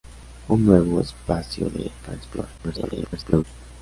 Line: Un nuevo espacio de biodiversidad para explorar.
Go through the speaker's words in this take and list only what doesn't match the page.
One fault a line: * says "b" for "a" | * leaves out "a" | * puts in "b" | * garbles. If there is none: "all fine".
* leaves out "biodiversidad"
* garbles